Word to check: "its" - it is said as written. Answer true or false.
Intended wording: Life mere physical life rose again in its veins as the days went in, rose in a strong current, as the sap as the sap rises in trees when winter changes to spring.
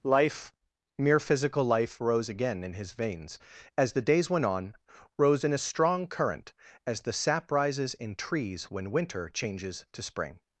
false